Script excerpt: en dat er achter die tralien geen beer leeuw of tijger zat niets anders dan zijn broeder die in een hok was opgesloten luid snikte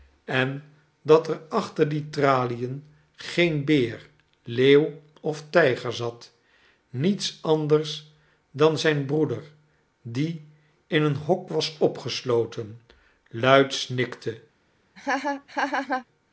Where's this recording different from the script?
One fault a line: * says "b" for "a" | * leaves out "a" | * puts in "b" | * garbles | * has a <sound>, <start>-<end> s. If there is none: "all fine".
* has a laugh, 15.0-16.1 s